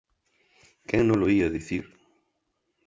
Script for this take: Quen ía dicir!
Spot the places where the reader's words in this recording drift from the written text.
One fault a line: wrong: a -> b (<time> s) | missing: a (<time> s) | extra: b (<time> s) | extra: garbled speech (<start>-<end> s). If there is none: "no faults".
extra: nolo (1.1 s)